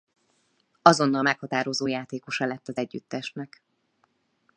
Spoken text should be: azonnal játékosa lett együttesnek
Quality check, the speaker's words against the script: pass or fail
fail